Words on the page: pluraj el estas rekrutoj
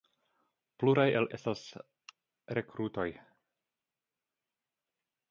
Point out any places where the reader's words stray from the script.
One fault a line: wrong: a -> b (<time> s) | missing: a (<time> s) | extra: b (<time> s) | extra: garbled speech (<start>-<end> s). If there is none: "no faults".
no faults